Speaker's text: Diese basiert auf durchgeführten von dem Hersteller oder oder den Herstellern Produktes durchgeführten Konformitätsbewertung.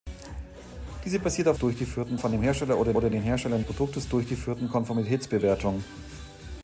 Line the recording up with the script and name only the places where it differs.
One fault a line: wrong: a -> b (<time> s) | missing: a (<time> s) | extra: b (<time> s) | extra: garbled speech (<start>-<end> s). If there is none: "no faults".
no faults